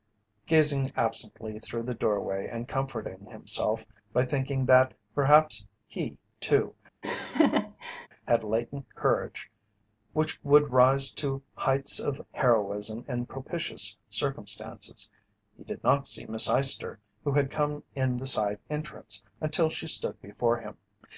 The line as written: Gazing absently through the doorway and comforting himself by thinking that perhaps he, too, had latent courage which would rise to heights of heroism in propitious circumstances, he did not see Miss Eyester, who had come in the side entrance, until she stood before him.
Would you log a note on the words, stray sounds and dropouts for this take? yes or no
yes